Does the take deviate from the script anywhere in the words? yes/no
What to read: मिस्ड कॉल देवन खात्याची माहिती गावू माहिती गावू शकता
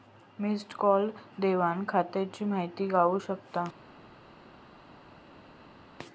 yes